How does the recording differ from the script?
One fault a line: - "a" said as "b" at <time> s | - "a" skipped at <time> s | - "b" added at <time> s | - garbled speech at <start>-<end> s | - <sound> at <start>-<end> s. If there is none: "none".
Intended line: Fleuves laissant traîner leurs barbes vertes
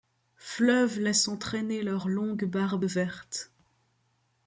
- "longues" added at 2.1 s